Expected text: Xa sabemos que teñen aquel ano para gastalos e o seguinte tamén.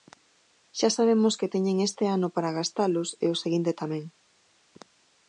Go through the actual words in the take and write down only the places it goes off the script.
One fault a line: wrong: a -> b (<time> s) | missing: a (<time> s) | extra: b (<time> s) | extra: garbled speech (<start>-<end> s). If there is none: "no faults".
wrong: aquel -> este (1.9 s)